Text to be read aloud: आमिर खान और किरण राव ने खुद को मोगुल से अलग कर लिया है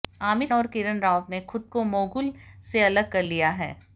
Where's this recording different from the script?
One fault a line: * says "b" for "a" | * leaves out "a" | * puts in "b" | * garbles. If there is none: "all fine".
* leaves out "खान"